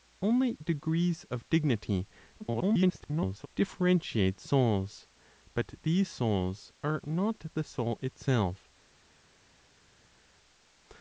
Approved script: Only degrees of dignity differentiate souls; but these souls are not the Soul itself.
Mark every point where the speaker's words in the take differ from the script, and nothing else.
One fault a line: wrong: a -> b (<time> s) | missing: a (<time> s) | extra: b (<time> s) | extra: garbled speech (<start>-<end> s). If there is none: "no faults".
extra: garbled speech (2.4-3.5 s)